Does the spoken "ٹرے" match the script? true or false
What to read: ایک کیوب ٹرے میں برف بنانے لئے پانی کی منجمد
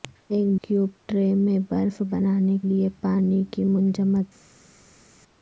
true